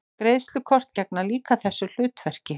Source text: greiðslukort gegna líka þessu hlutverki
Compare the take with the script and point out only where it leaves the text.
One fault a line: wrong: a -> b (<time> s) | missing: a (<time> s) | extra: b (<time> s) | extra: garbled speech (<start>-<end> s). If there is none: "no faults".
no faults